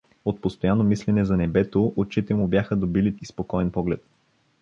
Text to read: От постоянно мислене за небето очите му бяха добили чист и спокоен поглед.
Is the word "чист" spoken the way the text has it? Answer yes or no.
no